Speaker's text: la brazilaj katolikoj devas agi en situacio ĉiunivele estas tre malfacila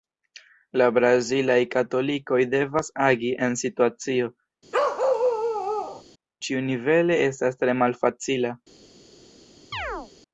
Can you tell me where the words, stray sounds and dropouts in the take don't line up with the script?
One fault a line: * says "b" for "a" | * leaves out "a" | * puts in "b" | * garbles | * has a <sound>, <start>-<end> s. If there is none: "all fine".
* has a bark, 4.7-6.0 s
* has a chirp, 9.7-10.1 s